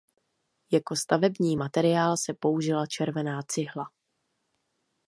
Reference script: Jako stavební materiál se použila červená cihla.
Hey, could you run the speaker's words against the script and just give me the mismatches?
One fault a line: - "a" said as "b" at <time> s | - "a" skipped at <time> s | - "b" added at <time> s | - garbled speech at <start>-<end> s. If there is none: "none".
none